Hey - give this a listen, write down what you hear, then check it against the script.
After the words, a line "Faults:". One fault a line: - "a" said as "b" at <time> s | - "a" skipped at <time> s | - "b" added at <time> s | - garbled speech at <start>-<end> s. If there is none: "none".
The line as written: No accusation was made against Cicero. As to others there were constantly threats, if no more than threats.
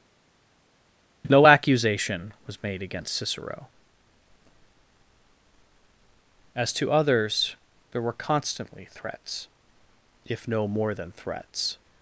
No accusation was made against Cicero. As to others there were constantly threats, if no more than threats.
Faults:
none